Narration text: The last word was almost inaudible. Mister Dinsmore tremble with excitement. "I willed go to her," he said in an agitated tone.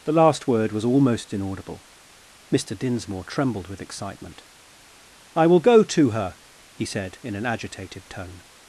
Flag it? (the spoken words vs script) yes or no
yes